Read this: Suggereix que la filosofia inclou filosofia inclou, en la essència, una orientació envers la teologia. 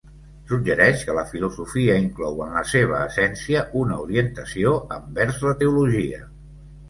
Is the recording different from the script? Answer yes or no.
yes